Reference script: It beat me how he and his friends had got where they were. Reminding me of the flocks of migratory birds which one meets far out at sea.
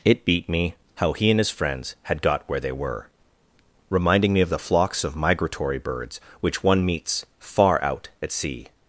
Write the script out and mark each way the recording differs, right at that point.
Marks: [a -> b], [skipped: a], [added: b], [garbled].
It beat me how he and his friends had got where they were. Reminding me of the flocks of migratory birds which one meets far out at sea.